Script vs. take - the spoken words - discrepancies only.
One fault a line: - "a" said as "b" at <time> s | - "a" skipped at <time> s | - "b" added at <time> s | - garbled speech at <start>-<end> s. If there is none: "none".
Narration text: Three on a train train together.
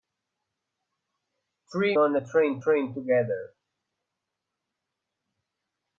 none